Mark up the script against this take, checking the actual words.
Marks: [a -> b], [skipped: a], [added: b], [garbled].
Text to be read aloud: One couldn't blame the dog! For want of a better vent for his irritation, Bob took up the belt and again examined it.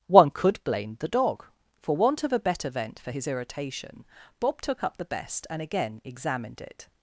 One [couldn't -> could] blame the dog! For want of a better vent for his irritation, Bob took up the [belt -> best] and again examined it.